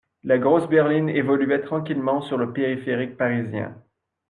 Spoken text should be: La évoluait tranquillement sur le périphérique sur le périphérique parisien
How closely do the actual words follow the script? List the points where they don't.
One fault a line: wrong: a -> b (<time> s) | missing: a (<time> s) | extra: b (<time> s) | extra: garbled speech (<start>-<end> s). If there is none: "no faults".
extra: grosse berline (0.4 s)
missing: sur le périphérique (3.2 s)